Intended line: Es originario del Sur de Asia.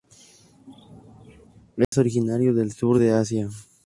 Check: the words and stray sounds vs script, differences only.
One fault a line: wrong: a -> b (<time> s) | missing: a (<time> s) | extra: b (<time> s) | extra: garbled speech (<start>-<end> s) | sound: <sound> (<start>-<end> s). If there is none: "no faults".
sound: dropout (1.8-1.9 s)